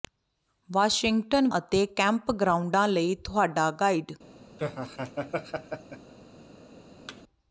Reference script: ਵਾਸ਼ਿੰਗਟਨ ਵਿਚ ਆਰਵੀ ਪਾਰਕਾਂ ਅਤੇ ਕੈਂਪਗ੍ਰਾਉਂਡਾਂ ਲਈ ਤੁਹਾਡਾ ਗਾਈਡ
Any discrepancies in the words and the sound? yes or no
yes